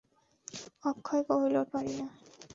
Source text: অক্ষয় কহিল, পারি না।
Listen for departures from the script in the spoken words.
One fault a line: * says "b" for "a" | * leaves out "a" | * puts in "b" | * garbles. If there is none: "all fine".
all fine